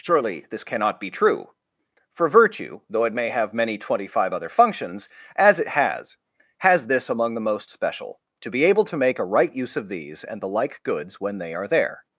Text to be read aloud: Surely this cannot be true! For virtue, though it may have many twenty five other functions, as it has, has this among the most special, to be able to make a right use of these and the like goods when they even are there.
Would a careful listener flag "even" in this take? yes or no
yes